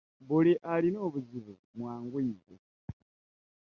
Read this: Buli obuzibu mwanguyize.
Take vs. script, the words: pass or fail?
fail